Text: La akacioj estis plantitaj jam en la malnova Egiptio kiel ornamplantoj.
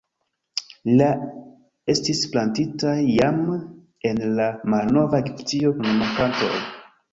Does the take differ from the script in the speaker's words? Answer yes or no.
yes